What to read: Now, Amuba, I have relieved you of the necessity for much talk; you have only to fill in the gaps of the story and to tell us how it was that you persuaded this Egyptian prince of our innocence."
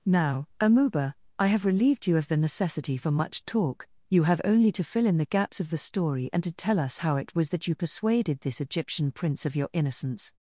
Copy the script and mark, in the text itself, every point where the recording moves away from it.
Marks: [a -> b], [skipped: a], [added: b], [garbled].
Now, Amuba, I have relieved you of the necessity for much talk; you have only to fill in the gaps of the story and to tell us how it was that you persuaded this Egyptian prince of [our -> your] innocence."